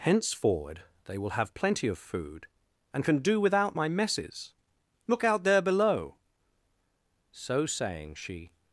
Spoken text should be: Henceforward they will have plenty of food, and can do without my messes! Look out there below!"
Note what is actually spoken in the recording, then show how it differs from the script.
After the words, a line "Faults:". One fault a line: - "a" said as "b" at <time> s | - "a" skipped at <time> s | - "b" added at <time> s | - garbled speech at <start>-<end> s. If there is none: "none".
Henceforward they will have plenty of food, and can do without my messes! Look out there below!" So saying, she
Faults:
- "So saying she" added at 7.3 s